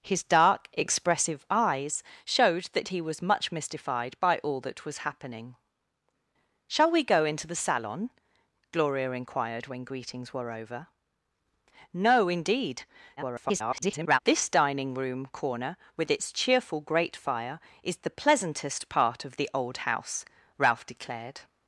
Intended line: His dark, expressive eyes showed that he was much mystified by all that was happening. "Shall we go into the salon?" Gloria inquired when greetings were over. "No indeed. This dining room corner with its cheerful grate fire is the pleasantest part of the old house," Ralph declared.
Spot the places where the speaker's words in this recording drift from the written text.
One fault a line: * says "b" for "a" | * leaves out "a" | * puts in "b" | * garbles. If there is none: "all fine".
* garbles